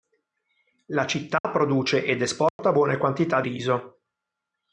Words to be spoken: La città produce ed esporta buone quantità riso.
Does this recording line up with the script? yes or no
yes